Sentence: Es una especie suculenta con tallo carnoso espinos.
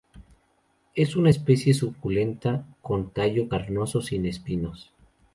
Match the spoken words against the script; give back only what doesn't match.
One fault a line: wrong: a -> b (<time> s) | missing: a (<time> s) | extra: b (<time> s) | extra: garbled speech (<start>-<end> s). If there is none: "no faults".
extra: sin (4.0 s)